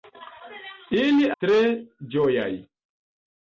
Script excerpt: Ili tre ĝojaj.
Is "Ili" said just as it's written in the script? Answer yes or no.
yes